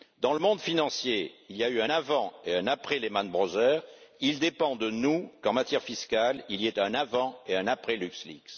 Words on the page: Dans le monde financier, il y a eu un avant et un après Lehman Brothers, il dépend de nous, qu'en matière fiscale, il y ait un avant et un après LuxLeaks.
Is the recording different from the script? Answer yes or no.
no